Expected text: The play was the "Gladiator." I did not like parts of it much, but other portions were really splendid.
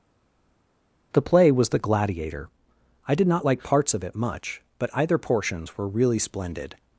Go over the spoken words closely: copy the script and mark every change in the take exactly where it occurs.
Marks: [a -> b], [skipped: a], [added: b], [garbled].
The play was the "Gladiator." I did not like parts of it much, but [other -> either] portions were really splendid.